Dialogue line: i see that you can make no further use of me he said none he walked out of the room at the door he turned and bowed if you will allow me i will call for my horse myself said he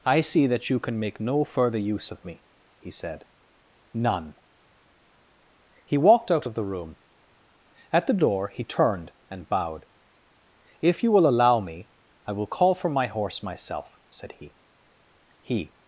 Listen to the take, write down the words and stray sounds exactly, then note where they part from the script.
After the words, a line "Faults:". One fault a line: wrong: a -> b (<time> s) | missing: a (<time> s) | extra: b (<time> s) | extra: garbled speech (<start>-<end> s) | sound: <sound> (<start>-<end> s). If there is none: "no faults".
i see that you can make no further use of me he said none he walked out of the room at the door he turned and bowed if you will allow me i will call for my horse myself said he he
Faults:
extra: he (15.4 s)